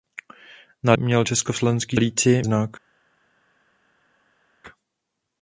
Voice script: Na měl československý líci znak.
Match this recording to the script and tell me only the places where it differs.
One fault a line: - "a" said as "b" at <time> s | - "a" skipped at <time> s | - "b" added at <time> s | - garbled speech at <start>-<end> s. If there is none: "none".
none